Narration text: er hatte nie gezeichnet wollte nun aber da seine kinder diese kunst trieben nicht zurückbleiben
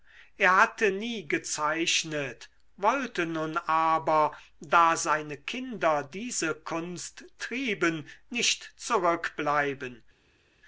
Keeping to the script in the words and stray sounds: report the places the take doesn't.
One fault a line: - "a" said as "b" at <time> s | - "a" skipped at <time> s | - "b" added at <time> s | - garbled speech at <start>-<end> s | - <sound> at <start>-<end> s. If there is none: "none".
none